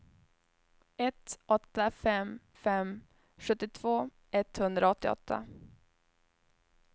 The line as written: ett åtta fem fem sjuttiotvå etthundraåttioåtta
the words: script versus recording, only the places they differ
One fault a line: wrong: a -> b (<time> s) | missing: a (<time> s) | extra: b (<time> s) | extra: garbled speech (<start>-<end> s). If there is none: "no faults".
no faults